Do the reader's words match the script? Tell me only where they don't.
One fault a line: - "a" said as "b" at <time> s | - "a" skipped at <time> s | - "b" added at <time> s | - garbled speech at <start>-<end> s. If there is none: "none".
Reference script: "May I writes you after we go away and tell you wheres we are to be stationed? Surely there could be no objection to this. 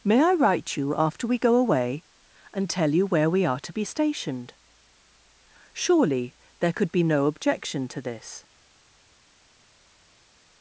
- "writes" said as "write" at 0.3 s
- "wheres" said as "where" at 3.0 s